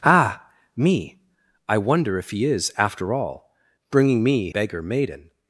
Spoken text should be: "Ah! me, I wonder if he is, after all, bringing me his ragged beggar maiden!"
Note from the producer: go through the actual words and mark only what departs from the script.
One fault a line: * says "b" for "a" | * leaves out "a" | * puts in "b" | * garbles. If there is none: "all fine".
* leaves out "his ragged"